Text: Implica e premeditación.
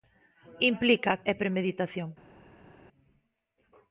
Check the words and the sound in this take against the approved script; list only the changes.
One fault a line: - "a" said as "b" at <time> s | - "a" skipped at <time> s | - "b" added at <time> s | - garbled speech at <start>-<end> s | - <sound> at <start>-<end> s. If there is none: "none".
none